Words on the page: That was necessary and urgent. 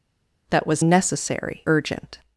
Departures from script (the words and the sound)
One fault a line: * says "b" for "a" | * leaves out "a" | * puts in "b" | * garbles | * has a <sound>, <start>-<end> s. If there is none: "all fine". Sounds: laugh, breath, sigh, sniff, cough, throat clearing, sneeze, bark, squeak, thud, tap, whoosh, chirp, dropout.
* leaves out "and"